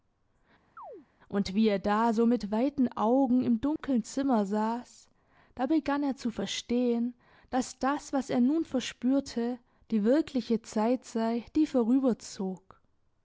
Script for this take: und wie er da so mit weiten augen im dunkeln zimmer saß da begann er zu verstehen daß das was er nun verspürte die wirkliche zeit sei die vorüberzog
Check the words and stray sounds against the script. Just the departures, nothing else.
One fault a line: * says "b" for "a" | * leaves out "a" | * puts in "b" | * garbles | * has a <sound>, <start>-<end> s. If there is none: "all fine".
* has a chirp, 0.8-1.1 s
* has a dropout, 3.8-3.8 s